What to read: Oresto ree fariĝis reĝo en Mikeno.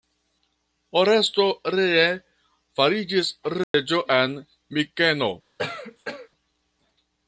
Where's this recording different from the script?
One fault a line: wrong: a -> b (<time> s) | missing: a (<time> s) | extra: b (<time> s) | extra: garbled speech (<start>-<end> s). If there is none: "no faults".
no faults